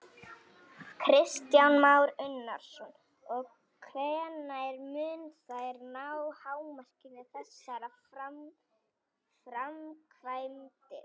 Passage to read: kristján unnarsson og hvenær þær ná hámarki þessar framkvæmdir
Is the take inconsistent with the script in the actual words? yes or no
yes